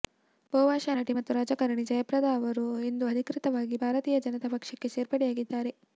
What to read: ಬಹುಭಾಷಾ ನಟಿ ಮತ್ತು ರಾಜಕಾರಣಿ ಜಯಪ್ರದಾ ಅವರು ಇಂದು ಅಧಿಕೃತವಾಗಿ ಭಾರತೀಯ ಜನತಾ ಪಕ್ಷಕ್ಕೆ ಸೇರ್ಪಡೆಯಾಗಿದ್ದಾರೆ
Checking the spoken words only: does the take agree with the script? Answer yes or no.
yes